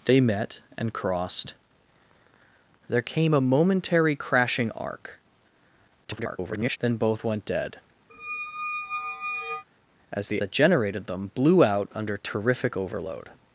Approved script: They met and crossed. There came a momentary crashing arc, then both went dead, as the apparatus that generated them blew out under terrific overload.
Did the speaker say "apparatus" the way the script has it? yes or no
no